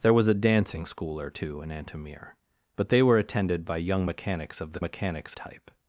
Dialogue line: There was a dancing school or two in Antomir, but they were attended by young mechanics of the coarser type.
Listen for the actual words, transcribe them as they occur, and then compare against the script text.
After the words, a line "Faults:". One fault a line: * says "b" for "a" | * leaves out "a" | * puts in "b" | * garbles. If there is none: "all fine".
There was a dancing school or two in Antomir, but they were attended by young mechanics of the mechanics type.
Faults:
* says "mechanics" for "coarser"